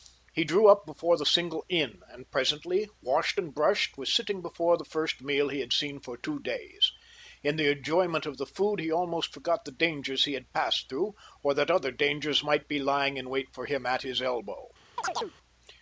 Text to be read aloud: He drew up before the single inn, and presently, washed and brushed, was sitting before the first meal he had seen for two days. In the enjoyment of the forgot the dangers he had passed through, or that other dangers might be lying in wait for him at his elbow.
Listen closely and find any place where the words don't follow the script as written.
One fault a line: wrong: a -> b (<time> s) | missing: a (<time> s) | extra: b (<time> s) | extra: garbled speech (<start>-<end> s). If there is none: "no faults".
extra: food he almost (8.4 s)